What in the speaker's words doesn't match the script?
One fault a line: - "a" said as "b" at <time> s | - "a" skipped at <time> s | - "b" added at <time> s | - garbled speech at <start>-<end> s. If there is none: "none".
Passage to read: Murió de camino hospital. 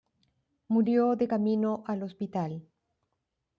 - "al" added at 1.8 s